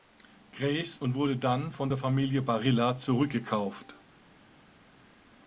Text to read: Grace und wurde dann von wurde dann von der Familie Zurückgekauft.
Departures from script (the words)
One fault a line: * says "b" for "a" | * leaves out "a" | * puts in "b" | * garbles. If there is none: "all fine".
* leaves out "wurde dann von"
* puts in "Barilla"